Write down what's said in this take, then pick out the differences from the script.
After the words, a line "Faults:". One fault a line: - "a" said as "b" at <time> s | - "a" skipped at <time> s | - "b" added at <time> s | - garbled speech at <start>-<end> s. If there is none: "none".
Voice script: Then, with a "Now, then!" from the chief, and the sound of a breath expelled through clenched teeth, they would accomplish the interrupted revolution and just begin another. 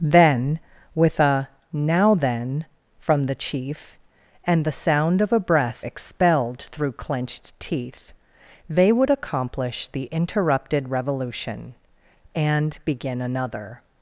Then, with a "Now, then!" from the chief, and the sound of a breath expelled through clenched teeth, they would accomplish the interrupted revolution and begin another.
Faults:
- "just" skipped at 12.8 s